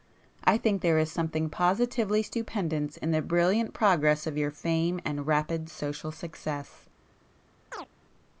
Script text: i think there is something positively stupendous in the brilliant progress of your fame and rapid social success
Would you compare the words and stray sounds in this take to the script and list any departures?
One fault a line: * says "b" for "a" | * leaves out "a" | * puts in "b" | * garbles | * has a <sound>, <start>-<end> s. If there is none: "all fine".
* has a chirp, 7.7-7.9 s